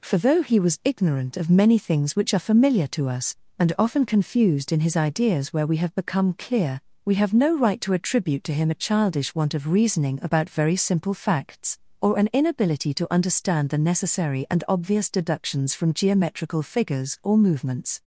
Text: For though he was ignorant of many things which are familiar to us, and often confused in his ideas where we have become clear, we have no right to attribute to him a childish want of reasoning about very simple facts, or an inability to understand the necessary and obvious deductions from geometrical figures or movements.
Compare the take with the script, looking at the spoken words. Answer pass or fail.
pass